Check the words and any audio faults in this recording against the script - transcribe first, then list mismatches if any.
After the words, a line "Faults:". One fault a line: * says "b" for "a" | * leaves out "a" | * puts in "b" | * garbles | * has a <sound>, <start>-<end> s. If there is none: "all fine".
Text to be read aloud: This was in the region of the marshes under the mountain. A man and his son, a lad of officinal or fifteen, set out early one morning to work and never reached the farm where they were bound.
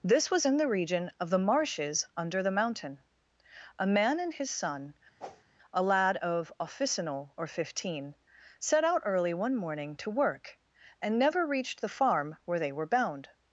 This was in the region of the marshes under the mountain. A man and his son, a lad of officinal or fifteen, set out early one morning to work and never reached the farm where they were bound.
Faults:
* has a whoosh, 5.2-5.4 s